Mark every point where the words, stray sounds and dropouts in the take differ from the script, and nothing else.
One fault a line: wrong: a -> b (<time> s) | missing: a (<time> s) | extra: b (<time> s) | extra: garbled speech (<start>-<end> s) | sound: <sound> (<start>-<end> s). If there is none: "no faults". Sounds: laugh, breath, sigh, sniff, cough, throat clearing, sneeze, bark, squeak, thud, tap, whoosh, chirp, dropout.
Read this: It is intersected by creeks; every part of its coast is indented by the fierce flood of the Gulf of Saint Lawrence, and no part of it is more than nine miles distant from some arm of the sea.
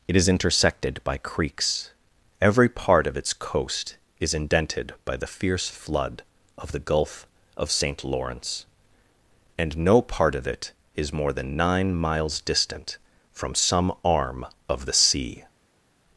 no faults